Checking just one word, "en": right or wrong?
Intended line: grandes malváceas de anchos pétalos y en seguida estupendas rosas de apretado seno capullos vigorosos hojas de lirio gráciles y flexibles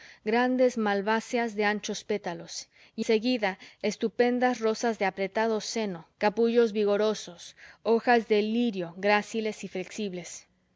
wrong